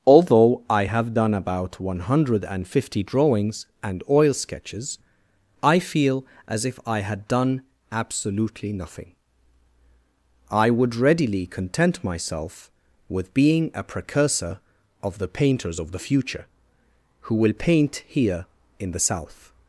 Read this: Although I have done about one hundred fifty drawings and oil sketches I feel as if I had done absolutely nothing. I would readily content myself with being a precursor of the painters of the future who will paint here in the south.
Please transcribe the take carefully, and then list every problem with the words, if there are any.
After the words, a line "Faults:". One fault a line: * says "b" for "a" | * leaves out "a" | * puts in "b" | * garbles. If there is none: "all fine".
Although I have done about one hundred fifty drawings and oil sketches I feel as if I had done absolutely nothing. I would readily content myself with being a precursor of the painters of the future who will paint here in the south.
Faults:
all fine